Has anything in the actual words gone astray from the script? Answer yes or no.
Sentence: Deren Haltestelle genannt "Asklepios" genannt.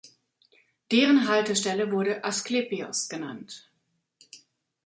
yes